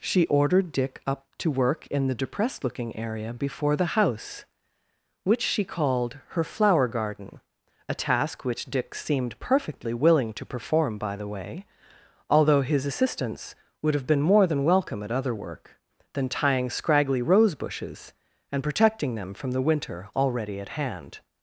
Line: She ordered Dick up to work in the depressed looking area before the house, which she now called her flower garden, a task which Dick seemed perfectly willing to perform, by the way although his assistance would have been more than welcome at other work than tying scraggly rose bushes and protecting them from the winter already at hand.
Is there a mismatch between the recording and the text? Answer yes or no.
yes